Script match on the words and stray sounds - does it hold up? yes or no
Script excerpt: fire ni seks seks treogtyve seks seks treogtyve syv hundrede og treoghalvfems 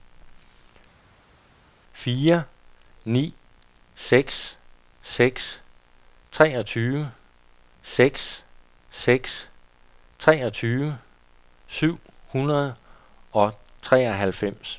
yes